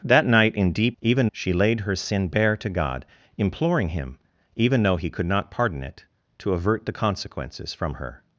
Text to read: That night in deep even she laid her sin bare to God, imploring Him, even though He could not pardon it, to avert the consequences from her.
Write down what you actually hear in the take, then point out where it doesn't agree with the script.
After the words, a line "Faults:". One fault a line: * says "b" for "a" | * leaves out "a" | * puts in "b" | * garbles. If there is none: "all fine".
That night in deep even she laid her sin bare to God, imploring Him, even though He could not pardon it, to avert the consequences from her.
Faults:
all fine